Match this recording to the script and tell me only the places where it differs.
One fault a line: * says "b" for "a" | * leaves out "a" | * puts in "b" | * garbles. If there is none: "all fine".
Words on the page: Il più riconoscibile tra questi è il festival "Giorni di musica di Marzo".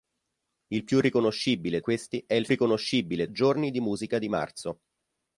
* leaves out "tra"
* says "riconoscibile" for "festival"